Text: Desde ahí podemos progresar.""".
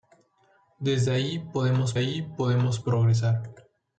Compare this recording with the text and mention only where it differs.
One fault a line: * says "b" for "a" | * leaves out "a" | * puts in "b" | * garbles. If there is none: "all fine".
* puts in "ahí podemos"